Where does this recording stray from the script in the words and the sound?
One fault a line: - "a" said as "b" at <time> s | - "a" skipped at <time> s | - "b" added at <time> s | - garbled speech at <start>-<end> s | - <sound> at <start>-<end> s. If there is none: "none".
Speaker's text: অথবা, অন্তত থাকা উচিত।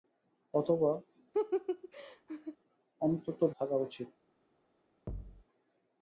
- laugh at 1.3-2.6 s
- thud at 5.1-5.4 s